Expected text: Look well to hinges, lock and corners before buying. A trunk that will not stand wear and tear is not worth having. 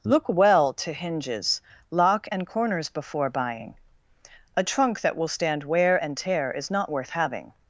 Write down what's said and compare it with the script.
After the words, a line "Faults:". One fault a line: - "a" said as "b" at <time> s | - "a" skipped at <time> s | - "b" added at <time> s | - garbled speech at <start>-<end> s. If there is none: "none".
Look well to hinges, lock and corners before buying. A trunk that will stand wear and tear is not worth having.
Faults:
- "not" skipped at 5.3 s